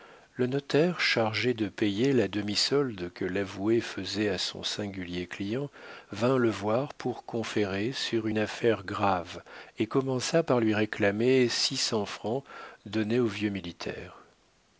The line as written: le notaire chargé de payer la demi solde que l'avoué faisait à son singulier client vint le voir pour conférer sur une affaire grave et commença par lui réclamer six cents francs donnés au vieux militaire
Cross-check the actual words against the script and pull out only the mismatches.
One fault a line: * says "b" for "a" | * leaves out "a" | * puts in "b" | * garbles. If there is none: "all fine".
all fine